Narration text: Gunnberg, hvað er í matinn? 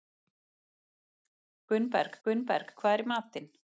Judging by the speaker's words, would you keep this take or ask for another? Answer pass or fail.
fail